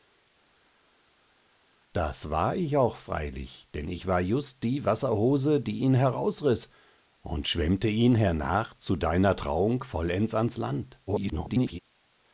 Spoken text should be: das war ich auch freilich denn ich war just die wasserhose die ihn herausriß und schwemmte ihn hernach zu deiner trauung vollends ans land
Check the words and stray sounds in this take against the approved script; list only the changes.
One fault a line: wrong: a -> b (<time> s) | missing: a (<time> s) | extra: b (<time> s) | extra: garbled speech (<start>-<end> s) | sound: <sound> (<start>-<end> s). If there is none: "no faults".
extra: garbled speech (11.1-11.8 s)